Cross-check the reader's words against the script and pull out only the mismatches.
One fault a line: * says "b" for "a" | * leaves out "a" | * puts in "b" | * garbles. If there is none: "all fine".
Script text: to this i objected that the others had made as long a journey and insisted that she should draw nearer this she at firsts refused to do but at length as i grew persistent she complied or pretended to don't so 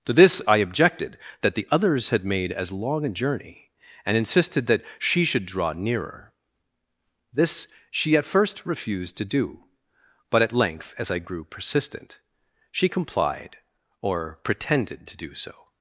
* says "first" for "firsts"
* says "do" for "don't"